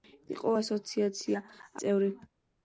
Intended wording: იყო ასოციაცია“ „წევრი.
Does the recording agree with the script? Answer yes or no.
yes